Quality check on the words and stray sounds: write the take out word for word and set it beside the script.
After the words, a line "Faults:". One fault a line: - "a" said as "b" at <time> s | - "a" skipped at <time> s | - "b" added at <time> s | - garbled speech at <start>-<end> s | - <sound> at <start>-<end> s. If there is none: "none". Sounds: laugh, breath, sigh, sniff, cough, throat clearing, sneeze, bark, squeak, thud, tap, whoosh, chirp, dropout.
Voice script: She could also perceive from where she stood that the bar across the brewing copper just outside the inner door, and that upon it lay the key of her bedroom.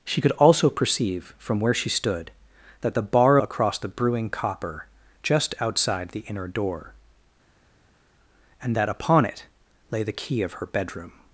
She could also perceive from where she stood that the bar across the brewing copper just outside the inner door, and that upon it lay the key of her bedroom.
Faults:
none